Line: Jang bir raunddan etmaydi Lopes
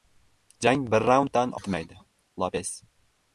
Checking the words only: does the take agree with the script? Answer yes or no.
yes